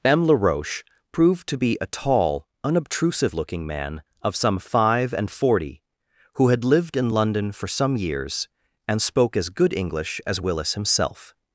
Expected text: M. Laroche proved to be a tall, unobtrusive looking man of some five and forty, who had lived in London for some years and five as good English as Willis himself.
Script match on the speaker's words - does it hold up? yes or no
no